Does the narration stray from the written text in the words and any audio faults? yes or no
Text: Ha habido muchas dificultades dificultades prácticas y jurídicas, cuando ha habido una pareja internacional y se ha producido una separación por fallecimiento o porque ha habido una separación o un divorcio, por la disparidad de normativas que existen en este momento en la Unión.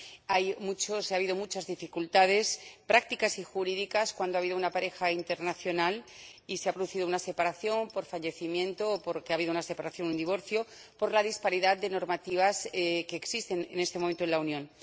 yes